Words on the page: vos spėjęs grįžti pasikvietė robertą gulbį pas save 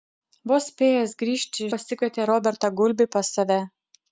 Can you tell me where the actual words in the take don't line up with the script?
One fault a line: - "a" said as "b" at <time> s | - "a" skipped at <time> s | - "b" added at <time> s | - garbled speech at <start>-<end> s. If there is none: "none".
none